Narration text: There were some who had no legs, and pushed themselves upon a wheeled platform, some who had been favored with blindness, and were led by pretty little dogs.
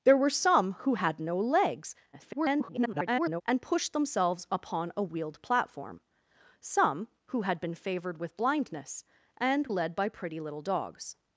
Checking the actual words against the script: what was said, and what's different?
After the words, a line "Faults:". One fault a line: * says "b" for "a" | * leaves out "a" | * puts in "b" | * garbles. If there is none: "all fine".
There were some who had no legs, [garbled] and pushed themselves upon a wheeled platform, some who had been favored with blindness, and led by pretty little dogs.
Faults:
* garbles
* leaves out "were"